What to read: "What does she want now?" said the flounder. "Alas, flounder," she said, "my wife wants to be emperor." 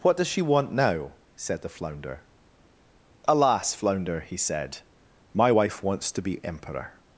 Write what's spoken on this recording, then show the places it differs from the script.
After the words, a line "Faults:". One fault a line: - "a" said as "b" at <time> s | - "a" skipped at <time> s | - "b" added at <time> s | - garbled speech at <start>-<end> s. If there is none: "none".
"What does she want now?" said the flounder. "Alas, flounder," he said, "my wife wants to be emperor."
Faults:
- "she" said as "he" at 4.2 s